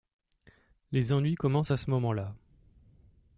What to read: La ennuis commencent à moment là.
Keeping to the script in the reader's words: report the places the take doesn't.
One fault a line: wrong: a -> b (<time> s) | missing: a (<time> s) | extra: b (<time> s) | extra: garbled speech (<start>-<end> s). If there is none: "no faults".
wrong: La -> Les (0.9 s)
extra: ce (1.8 s)